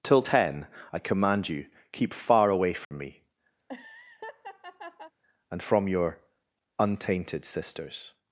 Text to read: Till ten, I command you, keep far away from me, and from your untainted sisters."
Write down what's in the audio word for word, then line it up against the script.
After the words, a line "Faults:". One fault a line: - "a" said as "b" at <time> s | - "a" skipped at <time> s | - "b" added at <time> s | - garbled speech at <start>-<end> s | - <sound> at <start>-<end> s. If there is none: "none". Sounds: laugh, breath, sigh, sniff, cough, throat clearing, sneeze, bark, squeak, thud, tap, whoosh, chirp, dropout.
Till ten, I command you, keep far away from me, and from your untainted sisters."
Faults:
- dropout at 2.8-2.9 s
- laugh at 3.6-5.1 s